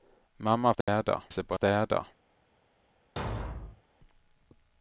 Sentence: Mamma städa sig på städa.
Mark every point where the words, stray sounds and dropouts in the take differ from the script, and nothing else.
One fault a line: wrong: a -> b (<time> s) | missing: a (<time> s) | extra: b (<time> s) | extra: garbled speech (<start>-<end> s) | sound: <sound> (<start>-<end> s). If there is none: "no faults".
sound: dropout (0.8-0.9 s)
sound: thud (3.2-3.8 s)